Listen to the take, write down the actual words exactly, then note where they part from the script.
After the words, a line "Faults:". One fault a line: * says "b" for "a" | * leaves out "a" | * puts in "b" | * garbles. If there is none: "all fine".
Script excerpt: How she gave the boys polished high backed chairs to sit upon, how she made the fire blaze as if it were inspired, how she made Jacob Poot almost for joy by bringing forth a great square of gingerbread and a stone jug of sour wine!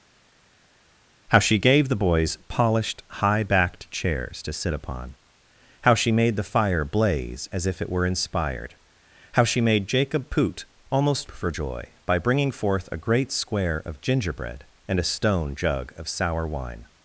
How she gave the boys polished high backed chairs to sit upon, how she made the fire blaze as if it were inspired, how she made Jacob Poot almost for joy by bringing forth a great square of gingerbread and a stone jug of sour wine!
Faults:
all fine